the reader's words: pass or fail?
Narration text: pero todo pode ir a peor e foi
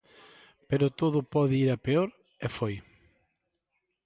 pass